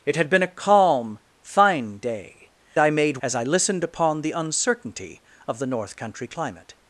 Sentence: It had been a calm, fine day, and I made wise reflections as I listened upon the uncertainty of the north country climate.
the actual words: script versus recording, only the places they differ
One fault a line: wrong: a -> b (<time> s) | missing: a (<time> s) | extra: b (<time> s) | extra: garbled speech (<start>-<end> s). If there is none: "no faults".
missing: and (2.5 s)
missing: wise reflections (3.2 s)